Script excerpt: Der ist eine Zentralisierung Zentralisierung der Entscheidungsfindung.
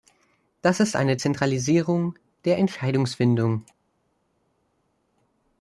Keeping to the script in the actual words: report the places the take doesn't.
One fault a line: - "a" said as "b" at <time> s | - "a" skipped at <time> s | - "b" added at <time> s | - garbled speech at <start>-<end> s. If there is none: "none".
- "Der" said as "Das" at 0.6 s
- "Zentralisierung" skipped at 2.2 s